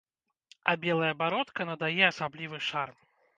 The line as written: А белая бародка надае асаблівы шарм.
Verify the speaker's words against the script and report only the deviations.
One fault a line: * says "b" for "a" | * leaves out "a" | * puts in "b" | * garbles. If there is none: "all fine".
all fine